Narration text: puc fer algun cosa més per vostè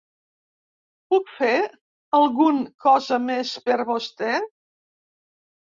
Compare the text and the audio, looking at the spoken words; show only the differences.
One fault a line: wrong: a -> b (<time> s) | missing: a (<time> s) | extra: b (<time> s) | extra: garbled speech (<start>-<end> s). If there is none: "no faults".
no faults